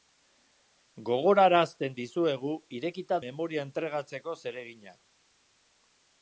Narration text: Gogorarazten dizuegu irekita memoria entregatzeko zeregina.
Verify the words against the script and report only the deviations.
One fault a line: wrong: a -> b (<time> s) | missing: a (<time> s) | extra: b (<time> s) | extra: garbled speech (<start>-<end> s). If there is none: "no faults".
no faults